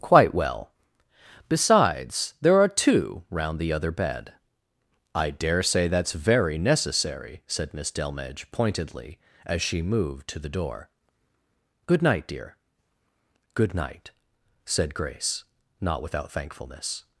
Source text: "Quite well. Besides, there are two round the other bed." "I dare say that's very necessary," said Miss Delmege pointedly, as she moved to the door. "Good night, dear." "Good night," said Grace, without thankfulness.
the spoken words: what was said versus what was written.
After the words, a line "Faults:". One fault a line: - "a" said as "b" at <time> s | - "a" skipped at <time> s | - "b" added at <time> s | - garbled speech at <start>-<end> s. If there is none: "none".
"Quite well. Besides, there are two round the other bed." "I dare say that's very necessary," said Miss Delmege pointedly, as she moved to the door. "Good night, dear." "Good night," said Grace, not without thankfulness.
Faults:
- "not" added at 15.8 s